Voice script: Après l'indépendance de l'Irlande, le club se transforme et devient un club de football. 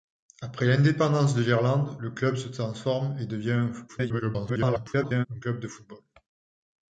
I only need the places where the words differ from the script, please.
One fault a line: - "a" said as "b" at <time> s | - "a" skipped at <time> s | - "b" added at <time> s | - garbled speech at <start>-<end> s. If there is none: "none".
- garbled speech at 3.9-5.3 s